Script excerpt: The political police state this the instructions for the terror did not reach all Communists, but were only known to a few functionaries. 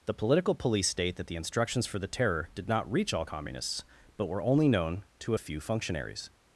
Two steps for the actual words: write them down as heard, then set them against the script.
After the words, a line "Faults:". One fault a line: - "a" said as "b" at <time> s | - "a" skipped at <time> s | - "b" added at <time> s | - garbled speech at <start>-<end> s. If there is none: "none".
The political police state that the instructions for the terror did not reach all Communists, but were only known to a few functionaries.
Faults:
- "this" said as "that" at 1.2 s